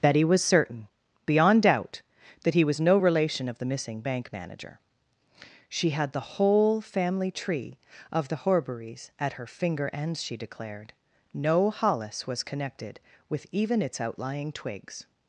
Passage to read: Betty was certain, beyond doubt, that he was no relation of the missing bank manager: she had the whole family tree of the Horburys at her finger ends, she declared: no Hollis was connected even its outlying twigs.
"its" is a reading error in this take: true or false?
false